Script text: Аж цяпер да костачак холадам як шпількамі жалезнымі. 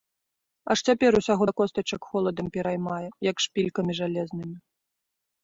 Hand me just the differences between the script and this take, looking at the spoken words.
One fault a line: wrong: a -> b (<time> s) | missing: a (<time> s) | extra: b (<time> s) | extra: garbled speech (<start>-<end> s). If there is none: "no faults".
extra: усяго (1.2 s)
extra: пераймае (2.6 s)